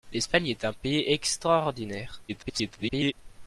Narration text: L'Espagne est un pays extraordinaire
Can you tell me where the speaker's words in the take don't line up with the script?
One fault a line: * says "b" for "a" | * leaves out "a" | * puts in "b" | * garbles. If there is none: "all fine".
* garbles